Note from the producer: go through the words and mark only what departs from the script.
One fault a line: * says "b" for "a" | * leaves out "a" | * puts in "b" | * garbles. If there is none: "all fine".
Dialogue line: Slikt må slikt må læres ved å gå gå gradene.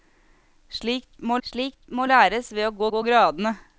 all fine